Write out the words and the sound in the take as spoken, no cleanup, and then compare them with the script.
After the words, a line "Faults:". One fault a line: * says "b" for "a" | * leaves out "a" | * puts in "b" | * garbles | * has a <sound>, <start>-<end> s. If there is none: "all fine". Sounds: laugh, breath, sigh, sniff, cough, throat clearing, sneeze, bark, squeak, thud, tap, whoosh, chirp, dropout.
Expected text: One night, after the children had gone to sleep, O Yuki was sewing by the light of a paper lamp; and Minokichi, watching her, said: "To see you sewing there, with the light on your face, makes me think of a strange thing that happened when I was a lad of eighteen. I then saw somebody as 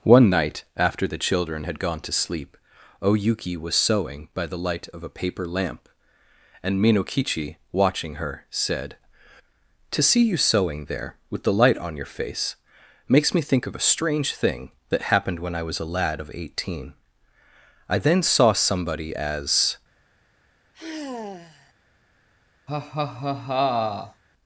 One night, after the children had gone to sleep, O Yuki was sewing by the light of a paper lamp; and Minokichi, watching her, said: "To see you sewing there, with the light on your face, makes me think of a strange thing that happened when I was a lad of eighteen. I then saw somebody as
Faults:
* has a sigh, 20.7-21.7 s
* has a laugh, 22.7-24.2 s